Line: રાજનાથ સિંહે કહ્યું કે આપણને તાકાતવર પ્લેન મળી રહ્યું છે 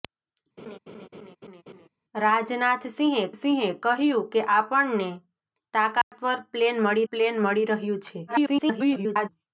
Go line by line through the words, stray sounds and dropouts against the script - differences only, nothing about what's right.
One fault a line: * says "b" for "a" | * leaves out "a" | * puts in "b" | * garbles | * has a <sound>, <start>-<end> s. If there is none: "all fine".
* has a laugh, 0.6-1.9 s
* puts in "સિંહે"
* has a dropout, 6.0-6.1 s
* puts in "પ્લેન મળી"
* garbles